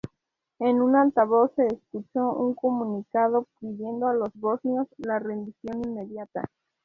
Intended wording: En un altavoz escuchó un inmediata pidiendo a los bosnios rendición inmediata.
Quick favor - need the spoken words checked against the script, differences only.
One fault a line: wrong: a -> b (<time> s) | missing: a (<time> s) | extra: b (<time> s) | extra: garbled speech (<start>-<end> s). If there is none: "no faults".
extra: se (1.6 s)
wrong: inmediata -> comunicado (2.5 s)
extra: la (5.0 s)